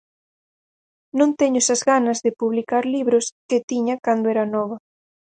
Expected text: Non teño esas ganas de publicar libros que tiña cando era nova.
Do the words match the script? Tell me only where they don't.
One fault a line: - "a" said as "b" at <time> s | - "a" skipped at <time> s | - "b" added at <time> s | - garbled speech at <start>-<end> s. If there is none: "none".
none